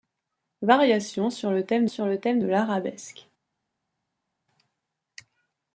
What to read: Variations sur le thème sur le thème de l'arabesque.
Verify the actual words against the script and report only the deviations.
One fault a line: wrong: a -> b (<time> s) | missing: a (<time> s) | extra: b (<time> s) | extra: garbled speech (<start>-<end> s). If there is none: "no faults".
no faults